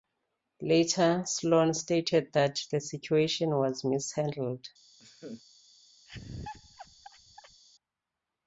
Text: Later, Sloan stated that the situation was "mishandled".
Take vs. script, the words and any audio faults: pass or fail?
fail